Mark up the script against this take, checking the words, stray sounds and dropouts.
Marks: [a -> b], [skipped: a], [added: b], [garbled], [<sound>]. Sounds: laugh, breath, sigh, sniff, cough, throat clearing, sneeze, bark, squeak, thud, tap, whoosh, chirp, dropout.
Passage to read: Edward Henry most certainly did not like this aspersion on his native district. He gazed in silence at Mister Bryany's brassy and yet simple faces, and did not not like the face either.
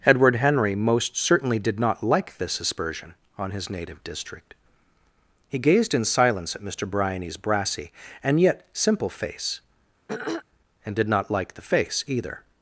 Edward Henry most certainly did not like this aspersion on his native district. He gazed in silence at Mister Bryany's brassy and yet simple [faces, -> face] [throat clearing] and did not [skipped: not] like the face either.